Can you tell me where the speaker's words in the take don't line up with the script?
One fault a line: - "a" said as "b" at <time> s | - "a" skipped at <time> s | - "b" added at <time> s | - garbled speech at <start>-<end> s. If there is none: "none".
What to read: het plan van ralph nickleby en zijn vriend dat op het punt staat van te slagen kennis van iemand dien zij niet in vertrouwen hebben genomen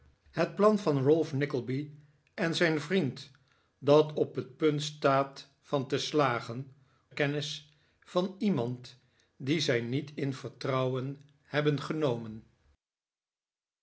none